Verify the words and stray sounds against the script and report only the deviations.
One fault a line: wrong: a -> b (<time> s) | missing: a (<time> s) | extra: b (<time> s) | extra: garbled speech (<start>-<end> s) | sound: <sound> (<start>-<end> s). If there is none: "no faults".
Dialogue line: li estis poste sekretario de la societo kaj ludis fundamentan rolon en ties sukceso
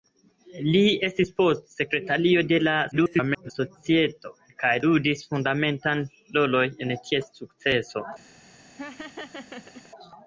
extra: garbled speech (2.9-3.5 s)
sound: laugh (8.7-9.9 s)